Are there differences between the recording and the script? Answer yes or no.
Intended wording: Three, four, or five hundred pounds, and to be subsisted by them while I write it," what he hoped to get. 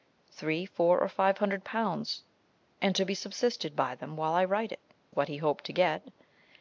no